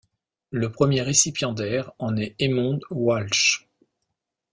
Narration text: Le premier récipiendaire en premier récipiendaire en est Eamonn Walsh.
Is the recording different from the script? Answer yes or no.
yes